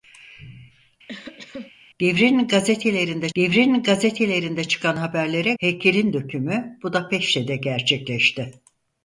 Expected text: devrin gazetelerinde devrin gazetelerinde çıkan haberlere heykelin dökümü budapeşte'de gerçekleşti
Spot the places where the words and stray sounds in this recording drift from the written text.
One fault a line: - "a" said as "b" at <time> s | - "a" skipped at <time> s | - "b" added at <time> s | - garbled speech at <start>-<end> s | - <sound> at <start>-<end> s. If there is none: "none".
- cough at 1.1-1.7 s